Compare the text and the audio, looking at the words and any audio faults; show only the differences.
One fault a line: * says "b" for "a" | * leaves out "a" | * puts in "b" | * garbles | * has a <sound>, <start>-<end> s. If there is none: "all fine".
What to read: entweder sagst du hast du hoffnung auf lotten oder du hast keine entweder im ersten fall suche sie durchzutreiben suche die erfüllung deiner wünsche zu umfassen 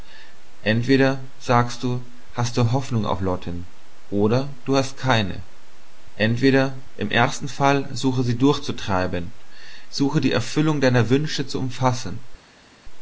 all fine